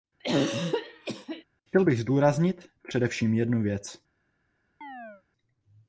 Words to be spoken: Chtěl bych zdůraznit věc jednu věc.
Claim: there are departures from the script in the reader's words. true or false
true